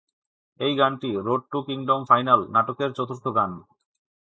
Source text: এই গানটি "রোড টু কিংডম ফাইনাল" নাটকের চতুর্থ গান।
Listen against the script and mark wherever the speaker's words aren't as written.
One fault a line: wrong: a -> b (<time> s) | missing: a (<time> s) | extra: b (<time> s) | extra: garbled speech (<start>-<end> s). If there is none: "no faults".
no faults